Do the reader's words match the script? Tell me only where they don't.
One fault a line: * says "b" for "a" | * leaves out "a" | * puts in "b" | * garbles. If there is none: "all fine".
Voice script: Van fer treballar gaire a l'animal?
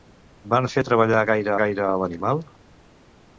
* puts in "gaire"